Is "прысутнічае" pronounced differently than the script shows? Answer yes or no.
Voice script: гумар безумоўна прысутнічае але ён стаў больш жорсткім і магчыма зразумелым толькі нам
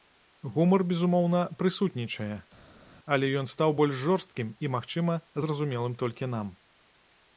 no